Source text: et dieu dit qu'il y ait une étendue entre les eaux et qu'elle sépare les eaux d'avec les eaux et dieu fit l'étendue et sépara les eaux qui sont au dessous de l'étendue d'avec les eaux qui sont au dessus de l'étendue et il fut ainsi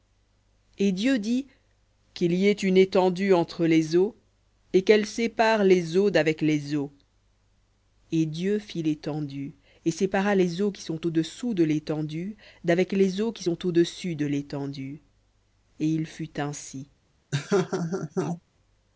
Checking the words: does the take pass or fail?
pass